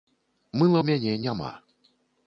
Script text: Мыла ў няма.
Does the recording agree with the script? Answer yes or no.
no